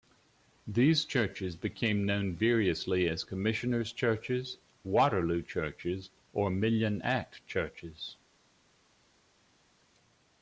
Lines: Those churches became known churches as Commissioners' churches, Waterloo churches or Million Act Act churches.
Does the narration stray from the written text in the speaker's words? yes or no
yes